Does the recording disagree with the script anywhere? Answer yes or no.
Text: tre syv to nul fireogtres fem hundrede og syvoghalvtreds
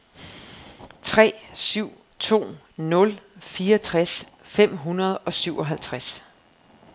no